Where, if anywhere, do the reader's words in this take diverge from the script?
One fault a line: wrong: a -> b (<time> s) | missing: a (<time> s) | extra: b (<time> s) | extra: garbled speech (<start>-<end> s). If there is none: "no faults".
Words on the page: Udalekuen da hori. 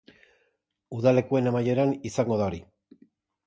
extra: amaieran izango (1.5 s)